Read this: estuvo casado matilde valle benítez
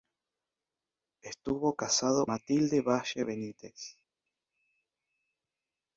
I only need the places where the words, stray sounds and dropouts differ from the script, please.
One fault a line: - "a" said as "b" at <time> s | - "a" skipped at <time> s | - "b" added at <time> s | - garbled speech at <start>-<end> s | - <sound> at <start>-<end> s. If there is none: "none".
none